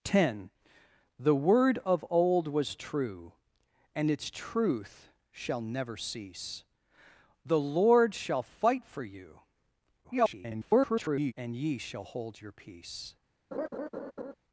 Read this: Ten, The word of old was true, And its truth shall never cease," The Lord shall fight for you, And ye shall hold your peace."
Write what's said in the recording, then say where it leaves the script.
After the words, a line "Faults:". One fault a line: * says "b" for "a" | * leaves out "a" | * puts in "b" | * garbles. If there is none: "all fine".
Ten, The word of old was true, And its truth shall never cease," The Lord shall fight for you, [garbled] And ye shall hold your peace."
Faults:
* garbles